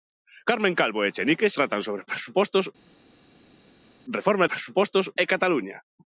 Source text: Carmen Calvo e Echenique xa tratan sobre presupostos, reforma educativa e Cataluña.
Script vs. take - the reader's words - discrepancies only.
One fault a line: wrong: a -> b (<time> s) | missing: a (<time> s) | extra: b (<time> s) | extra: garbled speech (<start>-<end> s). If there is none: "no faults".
missing: xa (1.5 s)
wrong: educativa -> presupostos (4.5 s)